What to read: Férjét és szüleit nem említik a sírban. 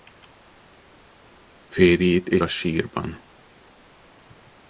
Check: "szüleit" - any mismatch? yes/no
yes